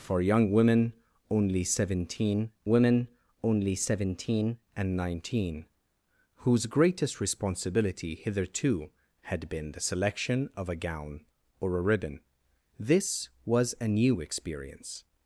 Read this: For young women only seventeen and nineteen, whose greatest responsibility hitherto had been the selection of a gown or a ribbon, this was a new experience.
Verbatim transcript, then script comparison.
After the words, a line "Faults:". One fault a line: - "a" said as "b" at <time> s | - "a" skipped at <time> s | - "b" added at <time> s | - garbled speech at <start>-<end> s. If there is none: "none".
For young women only seventeen women only seventeen and nineteen, whose greatest responsibility hitherto had been the selection of a gown or a ribbon, this was a new experience.
Faults:
- "women only seventeen" added at 2.7 s